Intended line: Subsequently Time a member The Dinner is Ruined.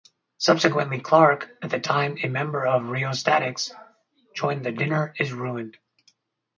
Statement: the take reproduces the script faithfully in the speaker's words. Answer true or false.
false